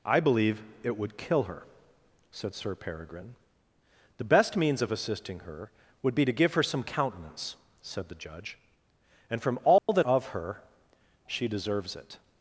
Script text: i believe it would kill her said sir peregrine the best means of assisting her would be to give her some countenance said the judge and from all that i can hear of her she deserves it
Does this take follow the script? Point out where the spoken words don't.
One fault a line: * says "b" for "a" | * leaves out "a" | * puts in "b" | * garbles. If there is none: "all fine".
* leaves out "i can hear"